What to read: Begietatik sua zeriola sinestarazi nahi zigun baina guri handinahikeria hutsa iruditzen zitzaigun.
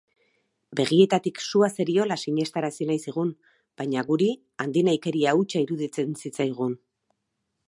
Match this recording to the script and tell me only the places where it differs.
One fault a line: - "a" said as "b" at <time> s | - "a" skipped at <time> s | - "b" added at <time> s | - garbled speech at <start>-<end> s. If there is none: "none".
none